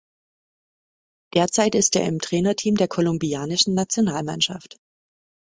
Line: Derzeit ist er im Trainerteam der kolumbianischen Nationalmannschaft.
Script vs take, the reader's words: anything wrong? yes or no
no